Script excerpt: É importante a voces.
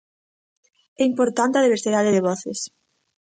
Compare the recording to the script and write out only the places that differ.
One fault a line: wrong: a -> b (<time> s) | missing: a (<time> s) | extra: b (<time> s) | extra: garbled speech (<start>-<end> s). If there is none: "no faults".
extra: diversidade de (1.6 s)